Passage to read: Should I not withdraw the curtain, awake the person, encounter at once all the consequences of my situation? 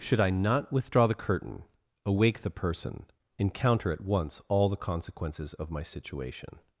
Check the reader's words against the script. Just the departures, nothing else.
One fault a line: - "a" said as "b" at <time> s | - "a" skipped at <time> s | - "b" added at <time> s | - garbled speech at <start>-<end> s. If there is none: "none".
none